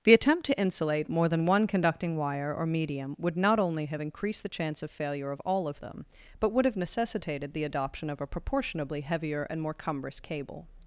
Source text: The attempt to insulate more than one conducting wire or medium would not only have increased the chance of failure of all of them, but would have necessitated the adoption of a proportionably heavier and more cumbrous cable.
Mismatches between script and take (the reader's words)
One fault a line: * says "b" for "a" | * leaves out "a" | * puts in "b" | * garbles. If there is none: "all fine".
all fine